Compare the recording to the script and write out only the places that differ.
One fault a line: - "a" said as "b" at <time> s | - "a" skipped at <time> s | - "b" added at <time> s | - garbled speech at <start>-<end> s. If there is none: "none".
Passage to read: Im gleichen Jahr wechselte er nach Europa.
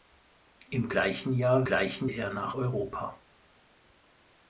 - "wechselte" said as "gleichen" at 1.6 s